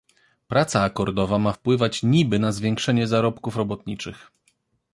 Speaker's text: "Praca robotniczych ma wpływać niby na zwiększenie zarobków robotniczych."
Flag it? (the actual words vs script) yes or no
yes